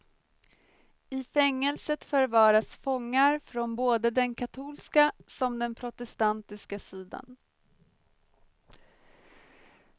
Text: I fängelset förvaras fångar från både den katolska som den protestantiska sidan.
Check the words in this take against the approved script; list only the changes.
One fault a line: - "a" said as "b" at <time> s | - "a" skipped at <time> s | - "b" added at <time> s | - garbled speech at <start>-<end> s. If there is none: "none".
none